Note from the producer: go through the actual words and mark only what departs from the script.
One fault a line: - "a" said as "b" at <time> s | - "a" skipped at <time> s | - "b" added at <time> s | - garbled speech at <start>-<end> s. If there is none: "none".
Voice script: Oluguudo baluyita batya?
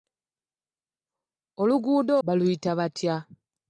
none